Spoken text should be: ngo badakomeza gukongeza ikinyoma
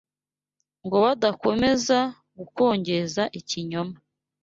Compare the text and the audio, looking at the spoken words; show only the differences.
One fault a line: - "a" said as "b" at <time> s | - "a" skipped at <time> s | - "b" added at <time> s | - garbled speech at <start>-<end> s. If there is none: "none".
none